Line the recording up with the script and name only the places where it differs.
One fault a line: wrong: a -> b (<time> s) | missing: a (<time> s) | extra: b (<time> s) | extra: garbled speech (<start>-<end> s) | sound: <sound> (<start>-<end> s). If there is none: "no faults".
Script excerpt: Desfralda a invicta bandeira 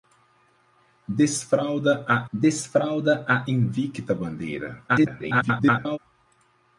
extra: desfralda a (2.3 s)
extra: garbled speech (4.9-6.0 s)